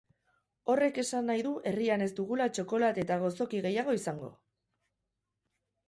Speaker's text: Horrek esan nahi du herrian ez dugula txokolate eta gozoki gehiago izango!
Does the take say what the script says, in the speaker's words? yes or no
yes